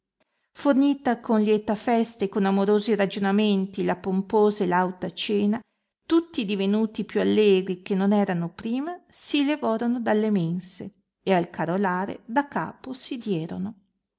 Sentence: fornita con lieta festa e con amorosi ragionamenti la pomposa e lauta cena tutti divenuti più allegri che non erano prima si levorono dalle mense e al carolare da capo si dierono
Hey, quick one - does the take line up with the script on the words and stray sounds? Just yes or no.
yes